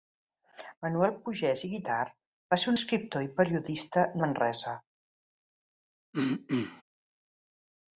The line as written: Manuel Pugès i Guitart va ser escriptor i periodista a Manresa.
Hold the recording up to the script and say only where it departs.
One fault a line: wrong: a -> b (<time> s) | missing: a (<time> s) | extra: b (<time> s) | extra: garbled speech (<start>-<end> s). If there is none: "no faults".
no faults